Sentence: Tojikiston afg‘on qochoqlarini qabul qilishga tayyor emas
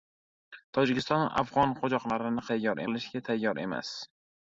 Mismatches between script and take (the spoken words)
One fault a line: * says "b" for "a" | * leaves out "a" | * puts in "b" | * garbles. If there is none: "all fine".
* says "tayyor" for "qabul"